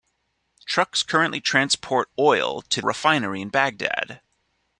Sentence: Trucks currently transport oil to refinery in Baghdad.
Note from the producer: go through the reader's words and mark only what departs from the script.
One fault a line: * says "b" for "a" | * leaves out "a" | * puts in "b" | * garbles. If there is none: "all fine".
all fine